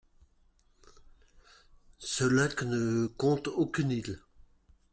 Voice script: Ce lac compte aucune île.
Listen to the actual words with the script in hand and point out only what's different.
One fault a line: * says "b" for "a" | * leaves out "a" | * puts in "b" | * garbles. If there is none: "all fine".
* puts in "ne"